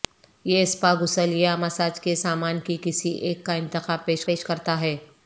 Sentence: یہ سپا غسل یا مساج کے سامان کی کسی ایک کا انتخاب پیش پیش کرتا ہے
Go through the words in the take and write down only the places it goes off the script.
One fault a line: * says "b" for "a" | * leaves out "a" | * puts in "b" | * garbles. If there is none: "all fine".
all fine